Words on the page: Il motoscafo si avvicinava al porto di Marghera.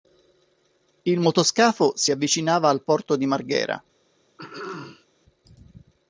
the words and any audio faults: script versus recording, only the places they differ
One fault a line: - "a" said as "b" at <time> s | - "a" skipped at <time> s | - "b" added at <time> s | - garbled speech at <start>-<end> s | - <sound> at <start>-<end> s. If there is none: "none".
- throat clearing at 4.4-5.1 s